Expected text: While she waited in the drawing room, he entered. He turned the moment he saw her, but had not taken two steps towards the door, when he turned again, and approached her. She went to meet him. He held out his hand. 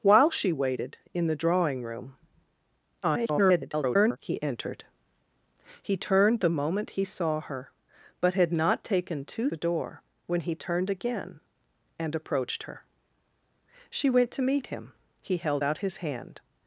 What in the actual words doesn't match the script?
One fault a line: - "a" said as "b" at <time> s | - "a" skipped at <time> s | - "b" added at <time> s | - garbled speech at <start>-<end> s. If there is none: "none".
- garbled speech at 3.0-4.2 s
- "steps towards" skipped at 9.5 s